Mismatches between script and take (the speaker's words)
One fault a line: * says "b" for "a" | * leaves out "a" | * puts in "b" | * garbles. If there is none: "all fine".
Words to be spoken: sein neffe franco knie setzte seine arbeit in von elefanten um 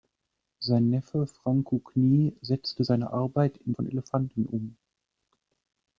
all fine